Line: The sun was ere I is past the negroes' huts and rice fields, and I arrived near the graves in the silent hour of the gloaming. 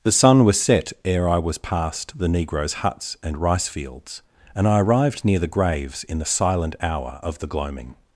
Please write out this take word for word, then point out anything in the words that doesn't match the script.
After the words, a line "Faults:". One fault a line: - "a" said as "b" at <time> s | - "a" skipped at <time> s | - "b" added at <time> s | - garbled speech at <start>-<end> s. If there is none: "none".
The sun was set ere I was past the negroes' huts and rice fields, and I arrived near the graves in the silent hour of the gloaming.
Faults:
- "set" added at 0.6 s
- "is" said as "was" at 1.4 s